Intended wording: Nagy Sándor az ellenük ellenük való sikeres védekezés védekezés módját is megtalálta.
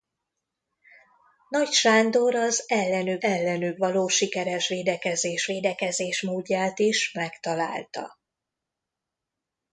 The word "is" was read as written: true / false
true